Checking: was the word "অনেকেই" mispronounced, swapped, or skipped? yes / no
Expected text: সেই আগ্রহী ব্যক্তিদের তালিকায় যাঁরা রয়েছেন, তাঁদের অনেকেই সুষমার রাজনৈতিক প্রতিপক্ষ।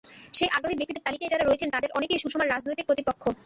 no